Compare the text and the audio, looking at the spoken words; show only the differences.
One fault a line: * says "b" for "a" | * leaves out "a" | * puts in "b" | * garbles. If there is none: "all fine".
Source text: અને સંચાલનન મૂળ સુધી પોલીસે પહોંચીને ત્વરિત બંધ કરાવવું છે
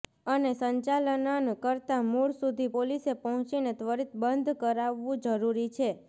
* puts in "કરતા"
* puts in "જરૂરી"